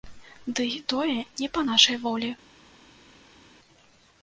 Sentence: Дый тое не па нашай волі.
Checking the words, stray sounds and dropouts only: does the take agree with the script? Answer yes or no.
yes